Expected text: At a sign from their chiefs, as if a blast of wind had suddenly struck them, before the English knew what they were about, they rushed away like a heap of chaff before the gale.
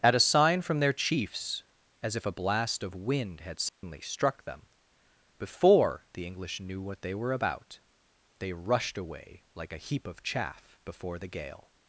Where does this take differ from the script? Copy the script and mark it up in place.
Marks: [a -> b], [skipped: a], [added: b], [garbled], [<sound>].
At a sign from their chiefs, as if a blast of wind had suddenly [dropout] struck them, before the English knew what they were about, they rushed away like a heap of chaff before the gale.